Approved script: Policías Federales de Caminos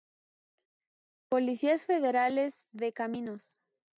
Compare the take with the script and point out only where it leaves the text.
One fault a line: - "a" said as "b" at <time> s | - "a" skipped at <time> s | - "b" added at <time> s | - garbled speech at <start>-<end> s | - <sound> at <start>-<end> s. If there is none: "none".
none